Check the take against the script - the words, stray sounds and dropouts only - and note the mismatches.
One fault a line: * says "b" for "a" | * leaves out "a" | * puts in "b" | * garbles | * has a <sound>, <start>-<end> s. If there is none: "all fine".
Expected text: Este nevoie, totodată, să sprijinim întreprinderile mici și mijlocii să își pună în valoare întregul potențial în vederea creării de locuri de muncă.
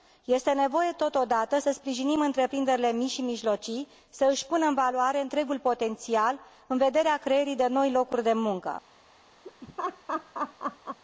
* puts in "noi"
* has a laugh, 9.4-11.0 s